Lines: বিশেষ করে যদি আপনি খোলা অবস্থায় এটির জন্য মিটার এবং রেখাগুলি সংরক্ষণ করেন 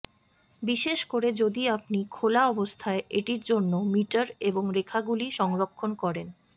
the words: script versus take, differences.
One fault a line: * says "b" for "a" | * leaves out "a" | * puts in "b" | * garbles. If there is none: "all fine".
all fine